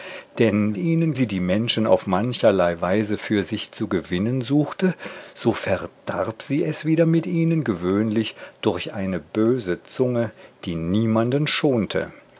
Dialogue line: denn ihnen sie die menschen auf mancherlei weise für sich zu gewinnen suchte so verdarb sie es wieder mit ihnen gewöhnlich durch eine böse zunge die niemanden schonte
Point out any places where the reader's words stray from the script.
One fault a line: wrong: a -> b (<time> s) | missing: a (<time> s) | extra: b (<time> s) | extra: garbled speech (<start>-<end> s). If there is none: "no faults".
no faults